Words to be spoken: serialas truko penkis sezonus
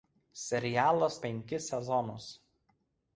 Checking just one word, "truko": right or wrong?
wrong